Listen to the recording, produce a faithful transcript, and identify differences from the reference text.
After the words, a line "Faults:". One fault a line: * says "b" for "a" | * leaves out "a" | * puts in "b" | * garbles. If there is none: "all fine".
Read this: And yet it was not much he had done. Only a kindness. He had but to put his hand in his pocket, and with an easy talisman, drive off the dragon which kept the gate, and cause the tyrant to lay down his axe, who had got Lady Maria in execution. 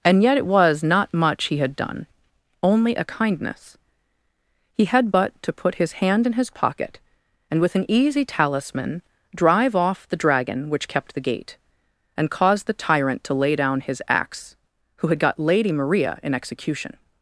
And yet it was not much he had done. Only a kindness. He had but to put his hand in his pocket, and with an easy talisman, drive off the dragon which kept the gate, and cause the tyrant to lay down his axe, who had got Lady Maria in execution.
Faults:
all fine